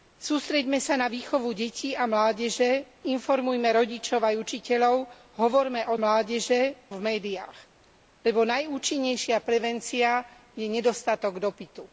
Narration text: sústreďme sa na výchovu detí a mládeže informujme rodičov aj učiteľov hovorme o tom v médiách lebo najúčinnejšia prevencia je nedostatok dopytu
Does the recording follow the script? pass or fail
fail